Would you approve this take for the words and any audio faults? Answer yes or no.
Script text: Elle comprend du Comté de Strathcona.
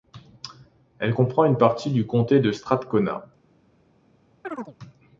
no